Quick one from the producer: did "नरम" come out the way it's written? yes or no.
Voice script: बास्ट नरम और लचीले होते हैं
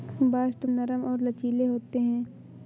yes